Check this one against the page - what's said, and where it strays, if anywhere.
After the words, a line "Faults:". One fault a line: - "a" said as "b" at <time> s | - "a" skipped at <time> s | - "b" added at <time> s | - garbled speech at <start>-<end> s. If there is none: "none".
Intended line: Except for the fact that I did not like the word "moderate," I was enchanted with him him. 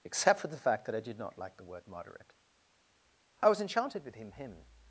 Except for the fact that I did not like the word "moderate," I was enchanted with him him.
Faults:
none